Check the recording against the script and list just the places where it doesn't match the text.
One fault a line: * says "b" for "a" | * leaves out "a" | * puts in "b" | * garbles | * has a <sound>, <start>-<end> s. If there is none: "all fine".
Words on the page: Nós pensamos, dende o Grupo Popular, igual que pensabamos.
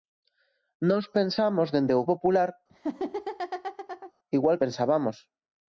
* leaves out "Grupo"
* has a laugh, 2.7-4.1 s
* leaves out "que"